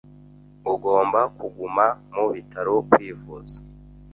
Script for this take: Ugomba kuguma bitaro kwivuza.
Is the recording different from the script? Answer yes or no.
yes